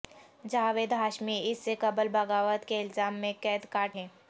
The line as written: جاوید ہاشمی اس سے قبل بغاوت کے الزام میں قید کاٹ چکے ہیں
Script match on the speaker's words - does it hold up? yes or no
no